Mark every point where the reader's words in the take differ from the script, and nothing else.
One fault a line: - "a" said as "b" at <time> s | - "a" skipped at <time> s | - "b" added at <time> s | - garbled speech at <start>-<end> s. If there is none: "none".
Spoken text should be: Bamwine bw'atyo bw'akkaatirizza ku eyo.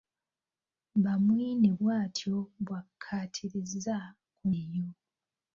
none